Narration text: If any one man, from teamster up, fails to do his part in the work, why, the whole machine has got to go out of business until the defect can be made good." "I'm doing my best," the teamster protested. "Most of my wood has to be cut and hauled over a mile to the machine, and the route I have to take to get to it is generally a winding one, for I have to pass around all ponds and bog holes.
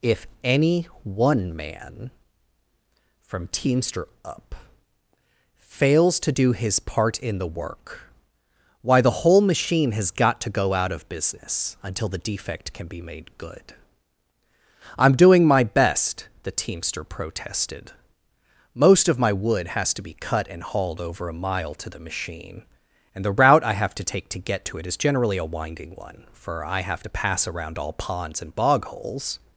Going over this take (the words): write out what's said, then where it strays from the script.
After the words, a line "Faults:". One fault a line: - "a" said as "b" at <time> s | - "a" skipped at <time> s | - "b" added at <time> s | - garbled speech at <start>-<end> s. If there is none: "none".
If any one man, from teamster up, fails to do his part in the work, why, the whole machine has got to go out of business until the defect can be made good." "I'm doing my best," the teamster protested. "Most of my wood has to be cut and hauled over a mile to the machine, and the route I have to take to get to it is generally a winding one, for I have to pass around all ponds and bog holes.
Faults:
none